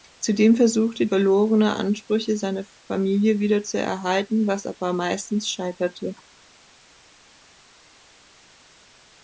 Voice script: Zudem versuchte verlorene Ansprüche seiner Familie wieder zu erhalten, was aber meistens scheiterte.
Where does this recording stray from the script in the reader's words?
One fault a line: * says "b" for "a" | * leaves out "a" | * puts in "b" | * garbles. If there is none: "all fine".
all fine